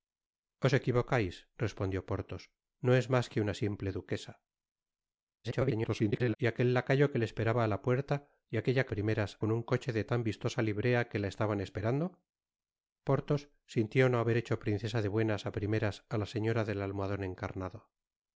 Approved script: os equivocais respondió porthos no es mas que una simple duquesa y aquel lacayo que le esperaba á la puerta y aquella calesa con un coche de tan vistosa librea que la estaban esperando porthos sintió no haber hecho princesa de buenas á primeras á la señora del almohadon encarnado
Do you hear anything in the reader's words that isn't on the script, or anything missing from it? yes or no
yes